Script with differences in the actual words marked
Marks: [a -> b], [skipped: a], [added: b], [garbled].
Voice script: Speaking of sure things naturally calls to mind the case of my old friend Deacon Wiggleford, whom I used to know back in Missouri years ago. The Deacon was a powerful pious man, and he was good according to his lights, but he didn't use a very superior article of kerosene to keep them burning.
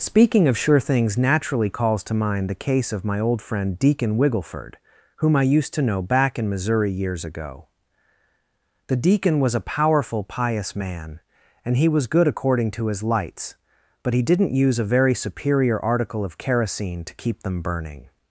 Speaking of sure things naturally calls to mind the case of my old friend Deacon Wiggleford, whom I used to know back in Missouri years ago. The Deacon was a powerful pious man, and he was good according to his lights, but he didn't use a very superior article of kerosene to keep them burning.